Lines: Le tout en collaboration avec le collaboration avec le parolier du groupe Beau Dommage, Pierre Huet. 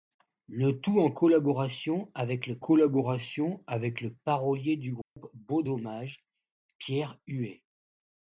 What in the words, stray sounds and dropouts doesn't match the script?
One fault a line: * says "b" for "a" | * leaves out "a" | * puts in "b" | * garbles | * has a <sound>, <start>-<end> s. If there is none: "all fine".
* has a dropout, 5.0-5.2 s